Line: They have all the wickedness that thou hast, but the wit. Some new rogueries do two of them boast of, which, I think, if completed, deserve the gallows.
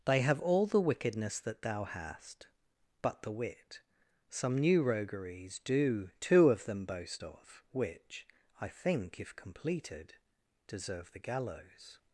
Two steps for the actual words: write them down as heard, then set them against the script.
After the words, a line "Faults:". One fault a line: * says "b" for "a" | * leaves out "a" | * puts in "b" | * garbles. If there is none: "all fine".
They have all the wickedness that thou hast, but the wit. Some new rogueries do two of them boast of, which, I think, if completed, deserve the gallows.
Faults:
all fine